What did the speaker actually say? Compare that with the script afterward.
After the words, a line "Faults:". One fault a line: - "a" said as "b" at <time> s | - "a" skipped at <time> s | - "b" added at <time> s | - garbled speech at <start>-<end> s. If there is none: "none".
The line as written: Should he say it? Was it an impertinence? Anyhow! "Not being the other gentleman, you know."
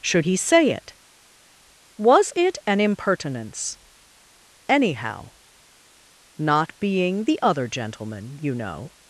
Should he say it? Was it an impertinence? Anyhow! "Not being the other gentleman, you know."
Faults:
none